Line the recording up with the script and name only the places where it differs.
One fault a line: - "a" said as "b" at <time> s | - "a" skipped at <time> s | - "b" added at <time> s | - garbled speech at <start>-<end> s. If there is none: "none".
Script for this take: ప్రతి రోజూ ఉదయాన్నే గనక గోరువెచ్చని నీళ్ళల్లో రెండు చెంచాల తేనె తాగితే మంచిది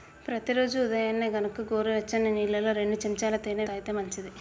none